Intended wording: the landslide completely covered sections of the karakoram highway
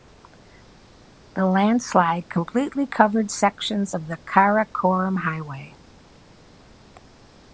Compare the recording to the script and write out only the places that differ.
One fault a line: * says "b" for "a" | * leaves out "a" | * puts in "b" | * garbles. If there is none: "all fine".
all fine